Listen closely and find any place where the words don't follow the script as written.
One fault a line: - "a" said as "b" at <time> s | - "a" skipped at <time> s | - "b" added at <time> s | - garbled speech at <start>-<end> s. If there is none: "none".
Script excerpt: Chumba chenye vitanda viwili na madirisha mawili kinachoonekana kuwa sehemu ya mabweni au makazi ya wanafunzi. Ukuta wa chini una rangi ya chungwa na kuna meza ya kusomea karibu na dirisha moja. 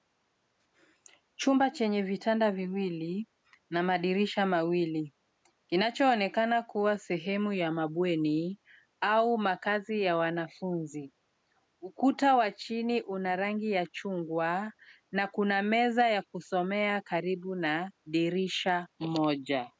none